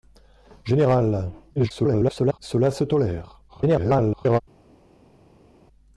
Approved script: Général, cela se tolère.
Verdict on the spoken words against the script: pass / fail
fail